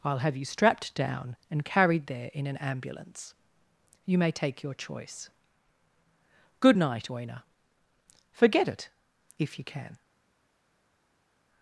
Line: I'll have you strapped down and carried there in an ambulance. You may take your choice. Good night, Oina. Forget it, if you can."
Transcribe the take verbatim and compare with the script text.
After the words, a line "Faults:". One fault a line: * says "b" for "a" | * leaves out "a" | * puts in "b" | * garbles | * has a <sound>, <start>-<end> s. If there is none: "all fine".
I'll have you strapped down and carried there in an ambulance. You may take your choice. Good night, Oina. Forget it, if you can."
Faults:
all fine